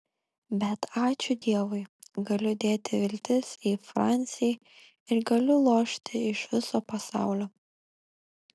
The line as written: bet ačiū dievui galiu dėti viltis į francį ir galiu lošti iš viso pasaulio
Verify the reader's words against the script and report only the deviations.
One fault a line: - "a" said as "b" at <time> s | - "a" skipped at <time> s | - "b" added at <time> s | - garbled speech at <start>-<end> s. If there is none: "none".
none